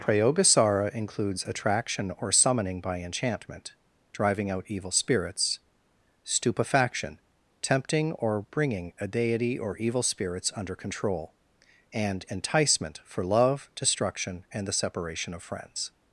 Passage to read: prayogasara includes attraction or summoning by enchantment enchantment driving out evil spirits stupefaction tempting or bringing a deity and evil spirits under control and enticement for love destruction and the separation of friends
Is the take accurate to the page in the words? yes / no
no